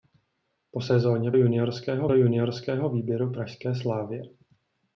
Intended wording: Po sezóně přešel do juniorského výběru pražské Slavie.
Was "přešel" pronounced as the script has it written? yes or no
no